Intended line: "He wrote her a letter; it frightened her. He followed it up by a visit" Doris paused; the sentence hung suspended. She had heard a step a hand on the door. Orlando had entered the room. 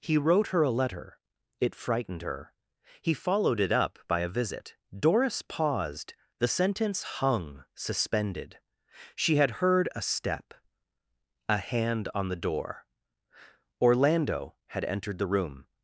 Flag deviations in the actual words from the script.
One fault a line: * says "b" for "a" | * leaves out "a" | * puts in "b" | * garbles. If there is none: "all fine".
all fine